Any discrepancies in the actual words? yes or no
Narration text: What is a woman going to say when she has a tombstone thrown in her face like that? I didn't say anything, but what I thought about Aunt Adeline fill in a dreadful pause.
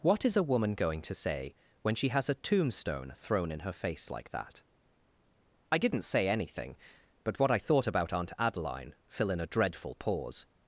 no